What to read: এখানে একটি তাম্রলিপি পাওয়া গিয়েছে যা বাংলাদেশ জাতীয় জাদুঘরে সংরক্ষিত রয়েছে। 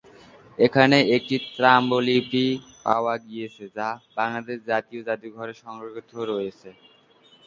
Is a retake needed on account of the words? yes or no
no